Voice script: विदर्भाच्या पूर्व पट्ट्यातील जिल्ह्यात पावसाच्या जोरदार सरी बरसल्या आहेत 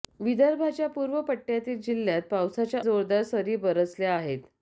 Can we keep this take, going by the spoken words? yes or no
yes